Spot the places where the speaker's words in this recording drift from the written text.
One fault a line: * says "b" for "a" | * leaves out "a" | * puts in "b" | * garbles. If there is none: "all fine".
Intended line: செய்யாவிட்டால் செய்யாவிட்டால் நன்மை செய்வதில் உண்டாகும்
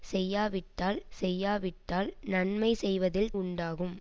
all fine